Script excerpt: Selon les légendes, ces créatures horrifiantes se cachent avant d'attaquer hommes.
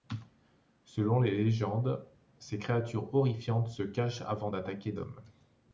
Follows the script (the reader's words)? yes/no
yes